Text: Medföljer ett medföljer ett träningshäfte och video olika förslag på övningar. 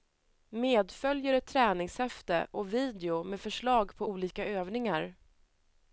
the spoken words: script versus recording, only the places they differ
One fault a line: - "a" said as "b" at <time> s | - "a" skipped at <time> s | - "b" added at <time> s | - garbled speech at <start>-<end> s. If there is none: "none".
- "medföljer ett" skipped at 1.5 s
- "olika" said as "med" at 3.2 s
- "olika" added at 4.1 s